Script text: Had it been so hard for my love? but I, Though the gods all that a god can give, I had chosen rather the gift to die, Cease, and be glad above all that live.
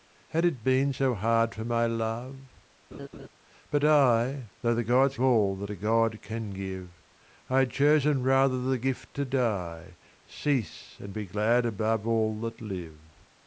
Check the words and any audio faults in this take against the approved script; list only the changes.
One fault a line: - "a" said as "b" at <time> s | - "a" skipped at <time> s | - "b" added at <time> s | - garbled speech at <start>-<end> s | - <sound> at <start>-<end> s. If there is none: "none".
- laugh at 2.9-3.3 s